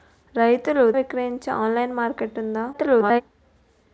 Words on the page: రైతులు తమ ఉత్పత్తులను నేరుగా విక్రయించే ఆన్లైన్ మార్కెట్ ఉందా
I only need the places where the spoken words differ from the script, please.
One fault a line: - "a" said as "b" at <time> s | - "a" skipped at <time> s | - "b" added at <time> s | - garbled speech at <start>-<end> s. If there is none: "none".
- "తమ ఉత్పత్తులను నేరుగా" skipped at 0.9 s
- garbled speech at 2.7-3.2 s